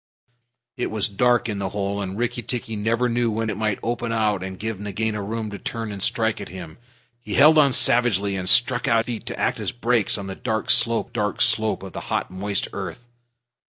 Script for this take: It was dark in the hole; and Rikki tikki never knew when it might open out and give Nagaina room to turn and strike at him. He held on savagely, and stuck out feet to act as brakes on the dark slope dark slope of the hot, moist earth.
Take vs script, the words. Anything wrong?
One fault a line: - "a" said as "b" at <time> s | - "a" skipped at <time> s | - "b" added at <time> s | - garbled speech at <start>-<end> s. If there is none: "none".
none